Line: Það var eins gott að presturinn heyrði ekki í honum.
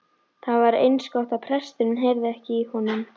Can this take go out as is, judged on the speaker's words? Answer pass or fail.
pass